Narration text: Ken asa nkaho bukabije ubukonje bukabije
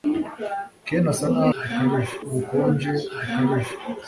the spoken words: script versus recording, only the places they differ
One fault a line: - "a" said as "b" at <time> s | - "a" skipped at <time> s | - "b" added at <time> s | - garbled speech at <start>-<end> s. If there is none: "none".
none